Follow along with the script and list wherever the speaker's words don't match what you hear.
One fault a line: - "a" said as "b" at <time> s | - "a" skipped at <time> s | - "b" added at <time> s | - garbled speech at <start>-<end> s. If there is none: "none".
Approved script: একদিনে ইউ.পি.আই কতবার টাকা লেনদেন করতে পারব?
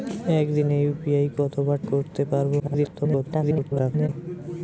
- "টাকা লেনদেন" skipped at 1.8 s
- garbled speech at 2.6-4.1 s